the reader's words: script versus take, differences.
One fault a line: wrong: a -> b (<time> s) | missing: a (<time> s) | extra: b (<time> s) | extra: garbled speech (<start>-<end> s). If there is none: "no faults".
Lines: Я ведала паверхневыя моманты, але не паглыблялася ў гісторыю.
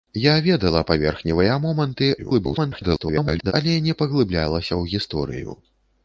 extra: garbled speech (2.2-3.5 s)